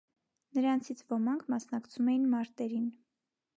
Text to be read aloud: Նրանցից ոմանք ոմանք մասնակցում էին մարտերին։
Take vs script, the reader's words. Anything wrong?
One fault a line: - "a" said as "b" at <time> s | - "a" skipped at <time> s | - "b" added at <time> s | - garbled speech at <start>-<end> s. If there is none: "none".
- "ոմանք" skipped at 1.4 s